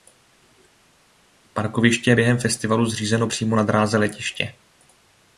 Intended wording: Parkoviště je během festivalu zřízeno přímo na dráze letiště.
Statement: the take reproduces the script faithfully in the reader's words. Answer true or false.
true